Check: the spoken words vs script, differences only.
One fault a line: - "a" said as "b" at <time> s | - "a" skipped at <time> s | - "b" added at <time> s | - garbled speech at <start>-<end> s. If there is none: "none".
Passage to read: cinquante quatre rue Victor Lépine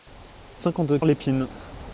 - "quatre rue Victor" skipped at 1.0 s